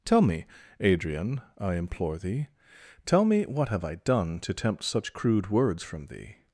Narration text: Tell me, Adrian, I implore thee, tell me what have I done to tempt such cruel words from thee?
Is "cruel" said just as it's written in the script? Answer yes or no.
no